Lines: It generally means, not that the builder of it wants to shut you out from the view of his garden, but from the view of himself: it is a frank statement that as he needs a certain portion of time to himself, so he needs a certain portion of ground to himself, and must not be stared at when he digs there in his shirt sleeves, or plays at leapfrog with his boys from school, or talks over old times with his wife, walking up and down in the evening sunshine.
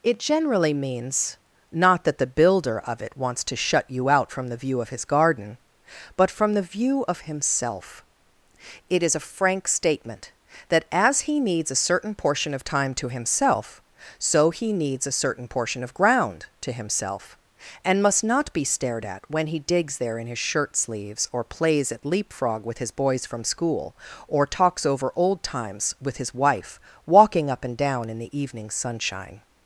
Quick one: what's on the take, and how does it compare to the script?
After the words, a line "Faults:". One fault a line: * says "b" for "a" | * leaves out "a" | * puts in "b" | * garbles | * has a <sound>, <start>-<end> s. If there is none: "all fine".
It generally means, not that the builder of it wants to shut you out from the view of his garden, but from the view of himself: it is a frank statement that as he needs a certain portion of time to himself, so he needs a certain portion of ground to himself, and must not be stared at when he digs there in his shirt sleeves, or plays at leapfrog with his boys from school, or talks over old times with his wife, walking up and down in the evening sunshine.
Faults:
all fine